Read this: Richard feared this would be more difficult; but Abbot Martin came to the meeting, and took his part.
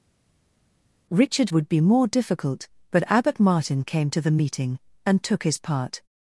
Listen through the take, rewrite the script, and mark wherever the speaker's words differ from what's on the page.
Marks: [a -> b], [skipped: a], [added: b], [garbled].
Richard [skipped: feared this] would be more difficult; but Abbot Martin came to the meeting, and took his part.